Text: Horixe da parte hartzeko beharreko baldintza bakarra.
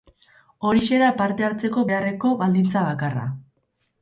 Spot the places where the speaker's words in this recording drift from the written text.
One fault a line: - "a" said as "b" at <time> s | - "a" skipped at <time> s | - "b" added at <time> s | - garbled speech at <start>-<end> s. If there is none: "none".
none